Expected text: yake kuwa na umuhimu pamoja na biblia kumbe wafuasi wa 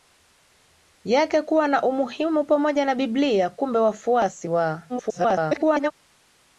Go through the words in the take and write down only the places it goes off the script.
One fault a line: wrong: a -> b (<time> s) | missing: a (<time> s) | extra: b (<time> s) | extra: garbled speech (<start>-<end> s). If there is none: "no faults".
extra: garbled speech (4.9-5.9 s)